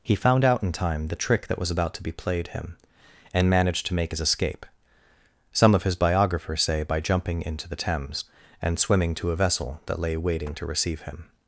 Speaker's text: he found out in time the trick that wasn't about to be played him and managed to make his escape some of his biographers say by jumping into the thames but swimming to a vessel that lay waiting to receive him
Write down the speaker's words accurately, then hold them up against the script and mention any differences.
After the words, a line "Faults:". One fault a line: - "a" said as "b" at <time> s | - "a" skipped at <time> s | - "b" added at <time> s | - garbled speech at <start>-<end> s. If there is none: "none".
he found out in time the trick that was about to be played him and managed to make his escape some of his biographers say by jumping into the thames and swimming to a vessel that lay waiting to receive him
Faults:
- "wasn't" said as "was" at 1.6 s
- "but" said as "and" at 8.6 s